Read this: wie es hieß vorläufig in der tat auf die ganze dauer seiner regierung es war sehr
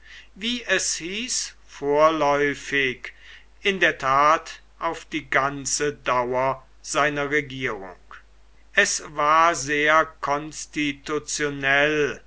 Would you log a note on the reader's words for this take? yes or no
no